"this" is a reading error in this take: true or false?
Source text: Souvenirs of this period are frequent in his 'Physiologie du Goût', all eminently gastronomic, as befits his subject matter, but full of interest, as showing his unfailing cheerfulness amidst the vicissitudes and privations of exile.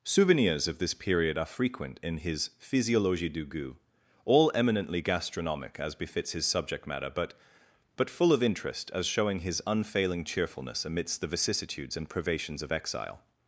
false